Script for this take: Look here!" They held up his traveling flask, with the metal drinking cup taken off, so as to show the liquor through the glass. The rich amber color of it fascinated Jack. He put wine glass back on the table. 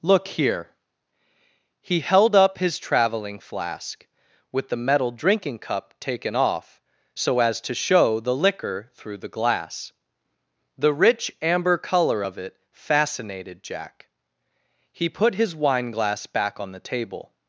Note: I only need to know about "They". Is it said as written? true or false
false